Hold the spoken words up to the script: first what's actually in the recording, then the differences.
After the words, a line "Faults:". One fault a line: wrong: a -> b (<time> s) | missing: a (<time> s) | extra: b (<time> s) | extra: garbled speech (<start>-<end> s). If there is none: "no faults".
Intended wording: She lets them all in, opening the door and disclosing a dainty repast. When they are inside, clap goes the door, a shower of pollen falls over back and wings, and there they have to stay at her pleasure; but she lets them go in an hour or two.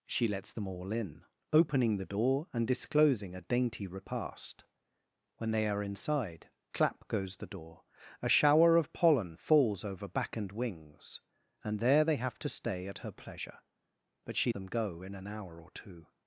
She lets them all in, opening the door and disclosing a dainty repast. When they are inside, clap goes the door, a shower of pollen falls over back and wings, and there they have to stay at her pleasure; but she them go in an hour or two.
Faults:
missing: lets (14.5 s)